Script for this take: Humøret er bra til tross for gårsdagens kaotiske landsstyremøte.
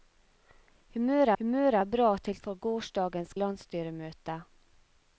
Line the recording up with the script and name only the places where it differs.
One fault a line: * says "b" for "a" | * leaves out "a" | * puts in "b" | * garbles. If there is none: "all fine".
* puts in "humøret"
* leaves out "tross"
* leaves out "kaotiske"